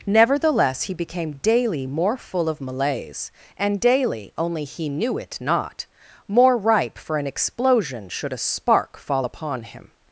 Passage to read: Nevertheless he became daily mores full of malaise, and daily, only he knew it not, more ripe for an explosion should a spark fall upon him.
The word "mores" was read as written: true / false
false